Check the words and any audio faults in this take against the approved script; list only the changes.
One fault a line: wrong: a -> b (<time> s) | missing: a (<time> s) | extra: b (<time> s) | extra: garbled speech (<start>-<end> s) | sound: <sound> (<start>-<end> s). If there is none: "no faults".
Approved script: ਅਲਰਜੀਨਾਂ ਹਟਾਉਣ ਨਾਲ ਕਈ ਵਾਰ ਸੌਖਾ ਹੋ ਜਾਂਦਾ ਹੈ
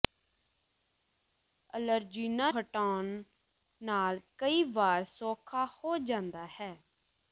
no faults